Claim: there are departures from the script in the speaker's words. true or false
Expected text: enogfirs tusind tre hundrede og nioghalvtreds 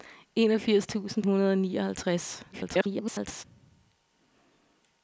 true